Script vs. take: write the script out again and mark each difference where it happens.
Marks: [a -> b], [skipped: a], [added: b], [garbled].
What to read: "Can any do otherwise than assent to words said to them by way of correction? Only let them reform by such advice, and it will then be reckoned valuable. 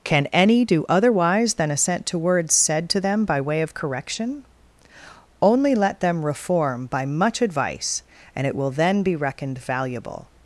"Can any do otherwise than assent to words said to them by way of correction? Only let them reform by [such -> much] advice, and it will then be reckoned valuable.